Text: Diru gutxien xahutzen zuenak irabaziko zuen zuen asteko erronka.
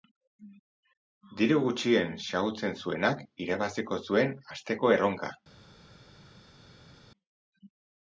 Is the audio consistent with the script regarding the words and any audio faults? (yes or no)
no